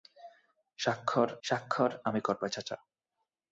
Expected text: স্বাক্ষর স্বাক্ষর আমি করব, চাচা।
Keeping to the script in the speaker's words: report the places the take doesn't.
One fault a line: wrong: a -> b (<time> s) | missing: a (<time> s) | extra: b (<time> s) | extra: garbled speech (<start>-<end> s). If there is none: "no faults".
no faults